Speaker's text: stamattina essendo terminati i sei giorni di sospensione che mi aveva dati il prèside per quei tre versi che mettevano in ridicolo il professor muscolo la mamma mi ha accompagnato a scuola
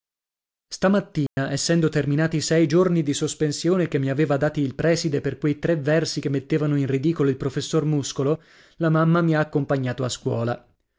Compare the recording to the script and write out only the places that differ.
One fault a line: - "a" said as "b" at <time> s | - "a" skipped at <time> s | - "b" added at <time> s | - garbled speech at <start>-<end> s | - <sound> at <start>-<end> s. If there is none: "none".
- dropout at 1.3-1.4 s